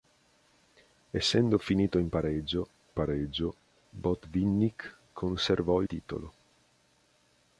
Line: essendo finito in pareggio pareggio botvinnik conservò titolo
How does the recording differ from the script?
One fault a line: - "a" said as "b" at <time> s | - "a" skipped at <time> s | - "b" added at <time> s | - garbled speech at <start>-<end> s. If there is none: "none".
none